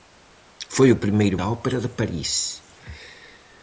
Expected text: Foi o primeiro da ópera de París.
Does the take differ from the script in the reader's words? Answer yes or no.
no